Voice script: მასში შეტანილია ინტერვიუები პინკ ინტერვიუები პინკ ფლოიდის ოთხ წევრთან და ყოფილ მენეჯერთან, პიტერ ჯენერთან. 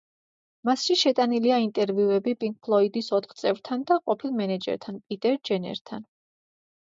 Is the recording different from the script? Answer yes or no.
yes